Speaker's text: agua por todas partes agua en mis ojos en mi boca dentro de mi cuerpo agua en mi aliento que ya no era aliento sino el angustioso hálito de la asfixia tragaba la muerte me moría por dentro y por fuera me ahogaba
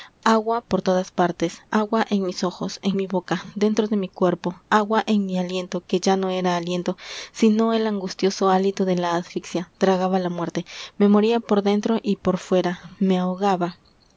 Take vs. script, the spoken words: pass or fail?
pass